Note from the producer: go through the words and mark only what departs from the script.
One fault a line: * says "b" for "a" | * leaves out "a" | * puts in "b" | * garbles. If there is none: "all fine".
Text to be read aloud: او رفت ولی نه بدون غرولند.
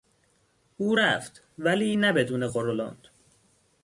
all fine